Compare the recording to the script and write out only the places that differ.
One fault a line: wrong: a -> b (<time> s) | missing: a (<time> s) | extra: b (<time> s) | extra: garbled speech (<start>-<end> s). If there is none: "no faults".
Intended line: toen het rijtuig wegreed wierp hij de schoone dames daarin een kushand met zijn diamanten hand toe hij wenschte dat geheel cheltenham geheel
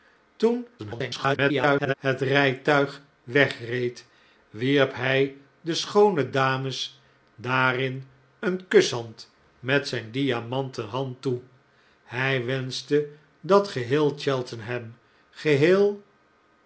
extra: garbled speech (0.8-1.9 s)